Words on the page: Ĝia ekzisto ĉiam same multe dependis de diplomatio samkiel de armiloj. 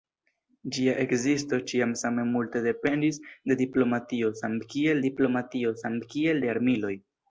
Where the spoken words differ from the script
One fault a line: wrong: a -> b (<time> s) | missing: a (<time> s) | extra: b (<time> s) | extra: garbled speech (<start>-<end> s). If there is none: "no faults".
extra: diplomatio samkiel (5.0 s)